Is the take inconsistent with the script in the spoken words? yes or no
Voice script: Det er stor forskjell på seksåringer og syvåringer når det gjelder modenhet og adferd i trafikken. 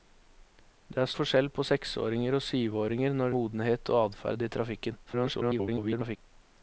yes